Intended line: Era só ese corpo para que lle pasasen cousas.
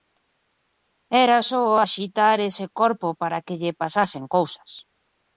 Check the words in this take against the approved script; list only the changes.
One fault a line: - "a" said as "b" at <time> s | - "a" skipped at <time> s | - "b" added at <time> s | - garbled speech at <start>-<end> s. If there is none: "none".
- "axitar" added at 1.8 s